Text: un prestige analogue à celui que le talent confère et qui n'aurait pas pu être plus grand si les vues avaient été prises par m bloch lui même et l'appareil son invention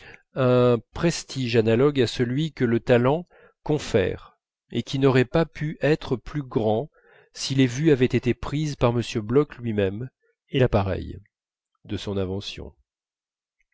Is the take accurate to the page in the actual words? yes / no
no